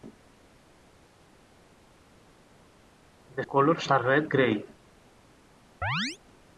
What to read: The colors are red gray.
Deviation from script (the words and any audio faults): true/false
true